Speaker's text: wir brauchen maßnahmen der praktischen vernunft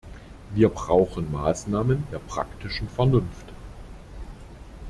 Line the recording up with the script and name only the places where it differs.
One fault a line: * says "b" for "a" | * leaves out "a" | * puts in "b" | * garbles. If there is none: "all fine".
all fine